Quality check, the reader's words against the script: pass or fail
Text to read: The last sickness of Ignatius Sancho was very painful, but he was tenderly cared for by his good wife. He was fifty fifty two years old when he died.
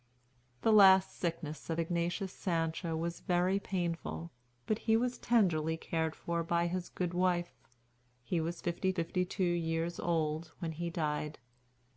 pass